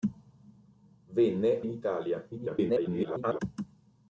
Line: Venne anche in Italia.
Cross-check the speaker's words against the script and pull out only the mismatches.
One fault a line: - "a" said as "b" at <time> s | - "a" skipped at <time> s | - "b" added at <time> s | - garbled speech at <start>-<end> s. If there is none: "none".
- "anche" skipped at 1.6 s
- garbled speech at 2.3-3.4 s